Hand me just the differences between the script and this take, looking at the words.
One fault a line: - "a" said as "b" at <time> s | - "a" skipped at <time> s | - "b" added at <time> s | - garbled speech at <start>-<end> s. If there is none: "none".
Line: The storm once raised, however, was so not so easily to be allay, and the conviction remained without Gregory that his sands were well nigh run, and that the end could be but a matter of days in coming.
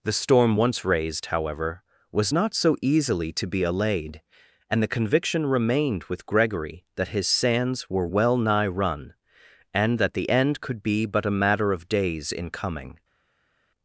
- "so" skipped at 2.3 s
- "allay" said as "allayed" at 3.6 s
- "without" said as "with" at 6.0 s